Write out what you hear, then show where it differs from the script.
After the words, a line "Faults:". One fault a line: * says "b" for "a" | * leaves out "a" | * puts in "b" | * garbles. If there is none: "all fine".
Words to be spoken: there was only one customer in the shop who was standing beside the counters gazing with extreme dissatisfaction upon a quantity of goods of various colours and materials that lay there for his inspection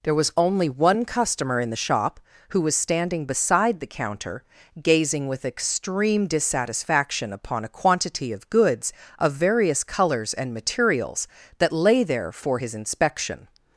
there was only one customer in the shop who was standing beside the counter gazing with extreme dissatisfaction upon a quantity of goods of various colours and materials that lay there for his inspection
Faults:
* says "counter" for "counters"